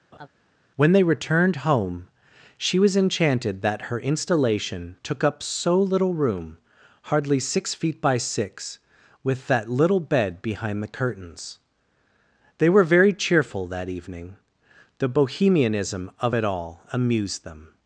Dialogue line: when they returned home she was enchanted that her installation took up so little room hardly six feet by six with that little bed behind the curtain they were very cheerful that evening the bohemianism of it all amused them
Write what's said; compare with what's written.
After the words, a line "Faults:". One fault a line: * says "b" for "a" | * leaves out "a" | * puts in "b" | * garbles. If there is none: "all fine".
when they returned home she was enchanted that her installation took up so little room hardly six feet by six with that little bed behind the curtains they were very cheerful that evening the bohemianism of it all amused them
Faults:
* says "curtains" for "curtain"